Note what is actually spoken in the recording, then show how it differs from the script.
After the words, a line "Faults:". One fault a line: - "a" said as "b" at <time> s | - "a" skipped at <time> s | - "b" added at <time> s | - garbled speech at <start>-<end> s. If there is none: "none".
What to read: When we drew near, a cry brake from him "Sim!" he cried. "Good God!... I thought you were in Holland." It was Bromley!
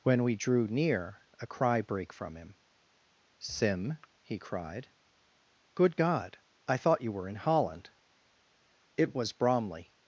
When we drew near, a cry brake from him "Sim!" he cried. "Good God!... I thought you were in Holland." It was Bromley!
Faults:
none